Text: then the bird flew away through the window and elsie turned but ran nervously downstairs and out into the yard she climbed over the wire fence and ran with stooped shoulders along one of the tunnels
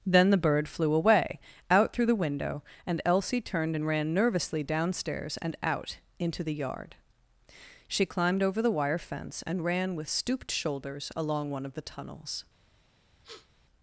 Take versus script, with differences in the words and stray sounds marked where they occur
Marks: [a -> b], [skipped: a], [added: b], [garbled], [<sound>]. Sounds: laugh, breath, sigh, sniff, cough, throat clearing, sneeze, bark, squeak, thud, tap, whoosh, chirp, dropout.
then the bird flew away [added: out] through the window and elsie turned [but -> and] ran nervously downstairs and out into the yard she climbed over the wire fence and ran with stooped shoulders along one of the tunnels [sniff]